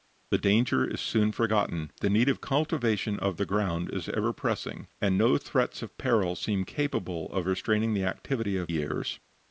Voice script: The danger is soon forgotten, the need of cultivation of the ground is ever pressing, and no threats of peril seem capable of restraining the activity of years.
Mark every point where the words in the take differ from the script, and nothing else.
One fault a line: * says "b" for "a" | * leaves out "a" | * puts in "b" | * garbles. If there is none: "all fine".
all fine